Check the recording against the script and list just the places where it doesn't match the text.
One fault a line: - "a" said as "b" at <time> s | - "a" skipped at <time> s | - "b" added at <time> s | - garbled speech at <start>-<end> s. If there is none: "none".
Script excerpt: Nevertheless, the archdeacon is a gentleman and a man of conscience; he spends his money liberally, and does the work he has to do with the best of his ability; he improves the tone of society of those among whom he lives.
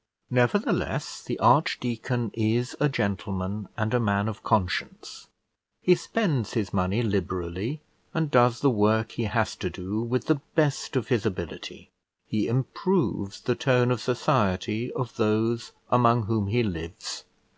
none